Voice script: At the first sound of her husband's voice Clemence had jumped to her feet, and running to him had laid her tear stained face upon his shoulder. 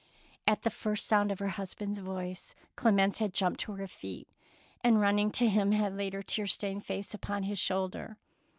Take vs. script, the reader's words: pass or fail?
pass